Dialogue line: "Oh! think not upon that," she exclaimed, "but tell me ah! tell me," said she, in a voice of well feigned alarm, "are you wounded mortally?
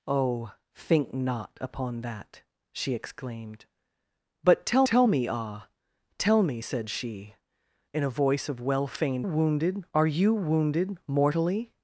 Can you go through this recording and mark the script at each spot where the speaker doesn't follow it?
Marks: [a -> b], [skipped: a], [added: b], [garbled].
"Oh! think not upon that," she exclaimed, "but tell [added: tell] me ah! tell me," said she, in a voice of well feigned [alarm, -> wounded] "are you wounded mortally?